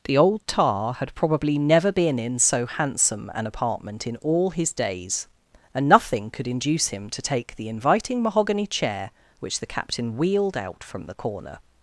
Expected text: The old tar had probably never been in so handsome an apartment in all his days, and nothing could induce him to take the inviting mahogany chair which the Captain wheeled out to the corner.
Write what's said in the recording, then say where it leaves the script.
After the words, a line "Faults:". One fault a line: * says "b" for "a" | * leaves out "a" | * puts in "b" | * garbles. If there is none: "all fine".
The old tar had probably never been in so handsome an apartment in all his days, and nothing could induce him to take the inviting mahogany chair which the Captain wheeled out from the corner.
Faults:
* says "from" for "to"